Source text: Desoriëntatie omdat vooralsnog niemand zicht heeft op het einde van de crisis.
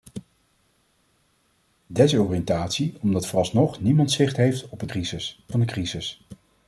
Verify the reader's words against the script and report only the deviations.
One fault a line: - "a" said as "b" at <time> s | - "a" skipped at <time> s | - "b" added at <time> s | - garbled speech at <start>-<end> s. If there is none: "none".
- "einde" said as "crisis" at 4.8 s